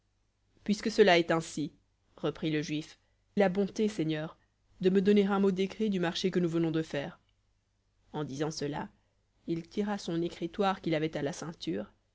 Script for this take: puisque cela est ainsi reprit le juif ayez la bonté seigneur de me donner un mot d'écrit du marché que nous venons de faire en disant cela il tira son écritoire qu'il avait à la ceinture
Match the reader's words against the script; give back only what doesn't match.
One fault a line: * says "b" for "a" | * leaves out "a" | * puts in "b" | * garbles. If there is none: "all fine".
* leaves out "ayez"